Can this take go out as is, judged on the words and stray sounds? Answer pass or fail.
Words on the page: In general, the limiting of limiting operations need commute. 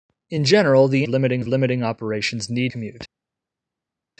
pass